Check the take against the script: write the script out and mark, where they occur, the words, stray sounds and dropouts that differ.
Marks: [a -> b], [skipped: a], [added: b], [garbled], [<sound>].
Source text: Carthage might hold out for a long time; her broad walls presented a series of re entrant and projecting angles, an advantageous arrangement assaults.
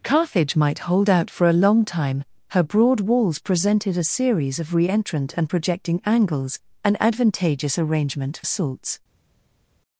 Carthage might hold out for a long time; her broad walls presented a series of re entrant and projecting angles, an advantageous arrangement assaults.